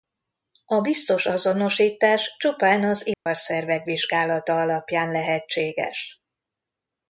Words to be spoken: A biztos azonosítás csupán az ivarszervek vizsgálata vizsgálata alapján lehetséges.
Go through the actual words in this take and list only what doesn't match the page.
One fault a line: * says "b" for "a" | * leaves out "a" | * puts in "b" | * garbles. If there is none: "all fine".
* leaves out "vizsgálata"